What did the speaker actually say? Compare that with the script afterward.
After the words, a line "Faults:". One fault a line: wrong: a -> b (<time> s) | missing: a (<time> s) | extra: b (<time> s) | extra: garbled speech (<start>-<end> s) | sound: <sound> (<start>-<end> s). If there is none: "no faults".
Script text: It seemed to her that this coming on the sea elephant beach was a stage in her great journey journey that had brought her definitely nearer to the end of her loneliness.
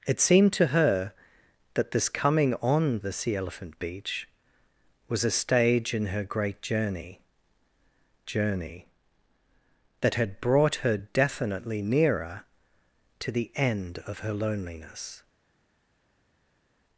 It seemed to her that this coming on the sea elephant beach was a stage in her great journey journey that had brought her definitely nearer to the end of her loneliness.
Faults:
no faults